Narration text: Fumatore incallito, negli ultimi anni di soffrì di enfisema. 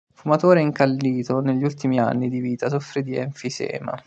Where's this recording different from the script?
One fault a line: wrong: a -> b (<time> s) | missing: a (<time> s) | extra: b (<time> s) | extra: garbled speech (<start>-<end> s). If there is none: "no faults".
extra: vita (2.4 s)